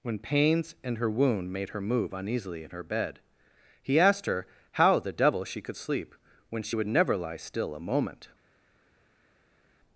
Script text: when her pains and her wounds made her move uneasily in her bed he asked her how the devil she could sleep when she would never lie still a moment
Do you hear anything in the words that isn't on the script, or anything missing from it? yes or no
yes